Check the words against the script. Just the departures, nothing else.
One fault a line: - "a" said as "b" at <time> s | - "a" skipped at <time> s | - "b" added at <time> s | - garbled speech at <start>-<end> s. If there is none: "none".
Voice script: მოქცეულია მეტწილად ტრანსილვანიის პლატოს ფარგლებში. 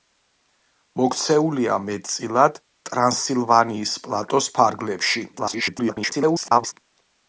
- garbled speech at 5.3-6.7 s